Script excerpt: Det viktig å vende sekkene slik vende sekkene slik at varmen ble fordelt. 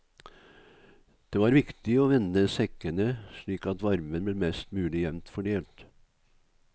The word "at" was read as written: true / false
false